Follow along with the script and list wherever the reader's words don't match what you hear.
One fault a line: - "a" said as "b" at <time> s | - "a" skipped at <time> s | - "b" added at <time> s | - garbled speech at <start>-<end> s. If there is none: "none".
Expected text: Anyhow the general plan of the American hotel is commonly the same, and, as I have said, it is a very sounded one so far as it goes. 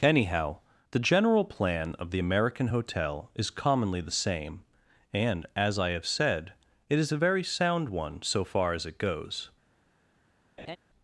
- "sounded" said as "sound" at 7.4 s